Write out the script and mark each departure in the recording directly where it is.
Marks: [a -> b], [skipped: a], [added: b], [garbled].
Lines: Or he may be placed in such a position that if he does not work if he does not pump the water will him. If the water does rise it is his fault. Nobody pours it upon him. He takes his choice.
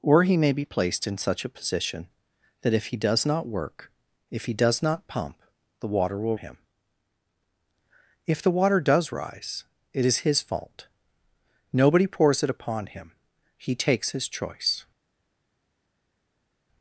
Or he may be placed in such a position that if he does not work if he does not pump the water will him. If the water does rise it is his fault. Nobody pours it upon him. He takes his choice.